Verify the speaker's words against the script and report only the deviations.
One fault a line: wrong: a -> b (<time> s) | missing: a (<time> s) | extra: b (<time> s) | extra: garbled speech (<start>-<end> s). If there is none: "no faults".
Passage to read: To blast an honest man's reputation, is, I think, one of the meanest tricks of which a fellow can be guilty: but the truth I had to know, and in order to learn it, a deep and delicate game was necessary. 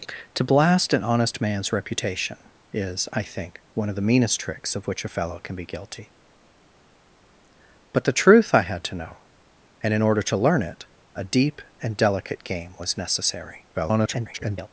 extra: garbled speech (13.7-14.7 s)